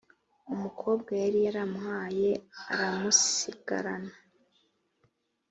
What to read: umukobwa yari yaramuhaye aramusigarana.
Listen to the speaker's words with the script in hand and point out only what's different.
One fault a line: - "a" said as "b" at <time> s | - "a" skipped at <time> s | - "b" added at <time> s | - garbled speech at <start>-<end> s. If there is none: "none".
none